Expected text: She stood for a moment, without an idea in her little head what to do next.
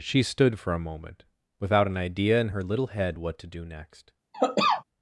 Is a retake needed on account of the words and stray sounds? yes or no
yes